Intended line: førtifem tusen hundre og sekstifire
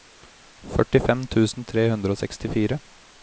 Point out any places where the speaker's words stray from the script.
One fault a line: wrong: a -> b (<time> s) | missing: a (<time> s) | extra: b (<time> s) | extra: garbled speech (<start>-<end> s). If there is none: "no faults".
extra: tre (1.7 s)